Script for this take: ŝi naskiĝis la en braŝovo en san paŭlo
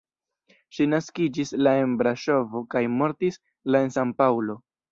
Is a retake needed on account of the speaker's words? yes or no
yes